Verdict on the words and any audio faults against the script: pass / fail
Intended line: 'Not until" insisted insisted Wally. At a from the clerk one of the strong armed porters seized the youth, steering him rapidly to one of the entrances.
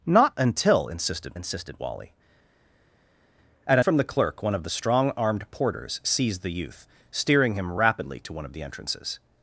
pass